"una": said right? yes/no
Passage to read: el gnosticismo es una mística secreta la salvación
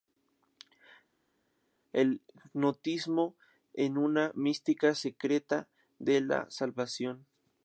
yes